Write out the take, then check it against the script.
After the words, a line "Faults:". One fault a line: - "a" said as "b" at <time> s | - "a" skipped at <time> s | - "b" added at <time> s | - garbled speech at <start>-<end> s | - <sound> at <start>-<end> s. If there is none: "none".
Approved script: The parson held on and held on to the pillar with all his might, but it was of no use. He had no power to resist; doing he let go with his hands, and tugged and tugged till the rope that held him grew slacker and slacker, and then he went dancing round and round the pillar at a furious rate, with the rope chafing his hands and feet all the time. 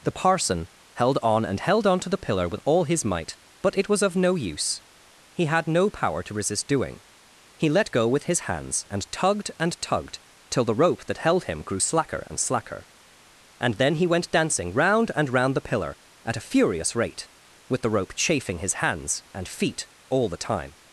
The parson held on and held on to the pillar with all his might, but it was of no use. He had no power to resist; doing he let go with his hands, and tugged and tugged till the rope that held him grew slacker and slacker, and then he went dancing round and round the pillar at a furious rate, with the rope chafing his hands and feet all the time.
Faults:
none